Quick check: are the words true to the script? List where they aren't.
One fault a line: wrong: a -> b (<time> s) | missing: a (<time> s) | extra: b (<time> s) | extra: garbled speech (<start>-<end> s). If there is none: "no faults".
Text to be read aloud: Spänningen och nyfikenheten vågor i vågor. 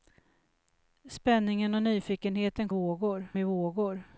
no faults